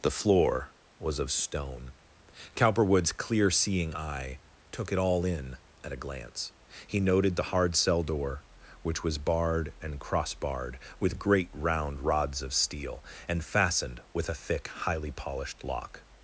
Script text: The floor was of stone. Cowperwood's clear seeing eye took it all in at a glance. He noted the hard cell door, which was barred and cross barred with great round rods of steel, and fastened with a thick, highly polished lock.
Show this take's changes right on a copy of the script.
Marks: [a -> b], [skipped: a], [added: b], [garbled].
The floor was of stone. Cowperwood's clear seeing eye took it all in at a glance. He noted the hard cell door, which was barred and cross barred with great round rods of steel, and fastened with a thick, highly polished lock.